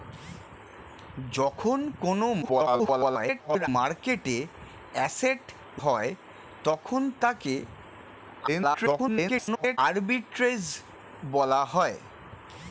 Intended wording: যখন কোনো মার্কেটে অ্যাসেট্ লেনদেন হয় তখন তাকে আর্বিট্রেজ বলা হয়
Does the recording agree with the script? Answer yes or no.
no